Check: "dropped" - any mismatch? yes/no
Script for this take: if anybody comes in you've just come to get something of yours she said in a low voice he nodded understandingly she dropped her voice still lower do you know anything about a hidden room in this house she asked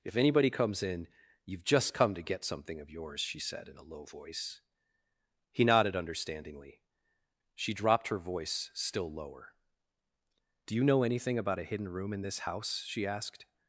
no